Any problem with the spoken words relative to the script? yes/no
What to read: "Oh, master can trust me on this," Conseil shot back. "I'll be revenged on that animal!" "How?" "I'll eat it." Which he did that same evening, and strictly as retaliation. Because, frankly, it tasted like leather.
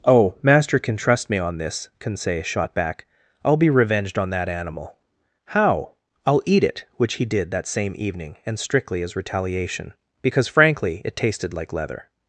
no